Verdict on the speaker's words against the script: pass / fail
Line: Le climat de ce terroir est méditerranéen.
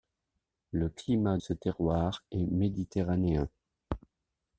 fail